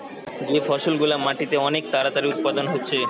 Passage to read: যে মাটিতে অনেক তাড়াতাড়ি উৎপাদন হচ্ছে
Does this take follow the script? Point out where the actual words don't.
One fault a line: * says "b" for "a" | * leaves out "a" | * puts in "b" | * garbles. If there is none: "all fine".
* puts in "ফসল গুলা"